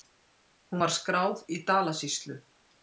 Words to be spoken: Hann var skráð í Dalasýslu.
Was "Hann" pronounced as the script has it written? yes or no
no